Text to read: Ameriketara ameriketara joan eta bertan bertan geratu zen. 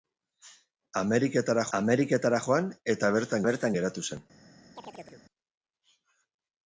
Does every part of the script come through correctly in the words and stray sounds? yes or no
no